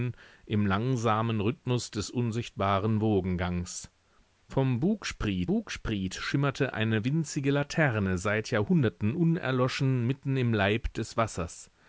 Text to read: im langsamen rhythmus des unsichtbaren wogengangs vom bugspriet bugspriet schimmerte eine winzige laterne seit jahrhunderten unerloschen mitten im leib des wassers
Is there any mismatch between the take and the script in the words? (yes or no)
no